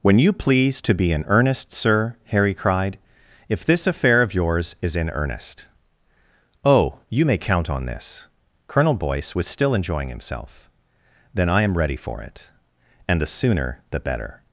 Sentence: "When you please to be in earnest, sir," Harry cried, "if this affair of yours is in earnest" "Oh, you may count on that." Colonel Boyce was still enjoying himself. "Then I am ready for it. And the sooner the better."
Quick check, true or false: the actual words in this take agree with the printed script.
false